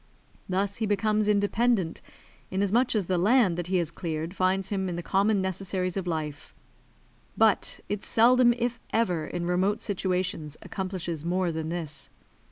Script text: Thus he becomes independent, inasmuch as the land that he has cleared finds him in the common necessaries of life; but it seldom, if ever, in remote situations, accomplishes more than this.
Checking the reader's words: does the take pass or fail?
pass